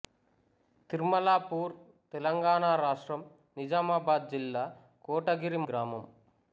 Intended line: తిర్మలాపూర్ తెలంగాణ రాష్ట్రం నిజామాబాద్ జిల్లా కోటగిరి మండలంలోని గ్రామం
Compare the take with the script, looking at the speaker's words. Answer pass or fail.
fail